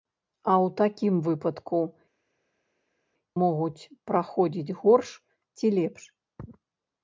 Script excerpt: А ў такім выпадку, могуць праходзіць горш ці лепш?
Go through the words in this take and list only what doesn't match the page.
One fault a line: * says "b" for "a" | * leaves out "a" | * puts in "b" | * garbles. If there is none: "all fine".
all fine